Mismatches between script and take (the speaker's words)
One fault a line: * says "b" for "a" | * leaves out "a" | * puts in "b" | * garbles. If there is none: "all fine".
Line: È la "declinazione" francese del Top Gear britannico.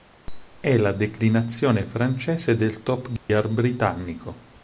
all fine